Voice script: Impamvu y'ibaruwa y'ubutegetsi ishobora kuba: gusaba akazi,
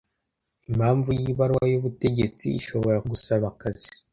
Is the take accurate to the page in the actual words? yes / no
no